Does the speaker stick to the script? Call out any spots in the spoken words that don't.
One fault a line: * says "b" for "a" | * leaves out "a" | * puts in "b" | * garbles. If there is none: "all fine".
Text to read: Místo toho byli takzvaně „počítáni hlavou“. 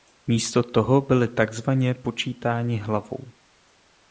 all fine